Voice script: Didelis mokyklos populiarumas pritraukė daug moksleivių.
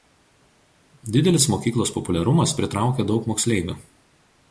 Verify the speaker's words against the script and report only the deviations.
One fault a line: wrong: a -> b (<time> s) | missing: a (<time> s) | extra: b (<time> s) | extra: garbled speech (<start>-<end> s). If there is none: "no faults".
no faults